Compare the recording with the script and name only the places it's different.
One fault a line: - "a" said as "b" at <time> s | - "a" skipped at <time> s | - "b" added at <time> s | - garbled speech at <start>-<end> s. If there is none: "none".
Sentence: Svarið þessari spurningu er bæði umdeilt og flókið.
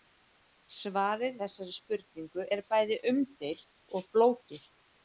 none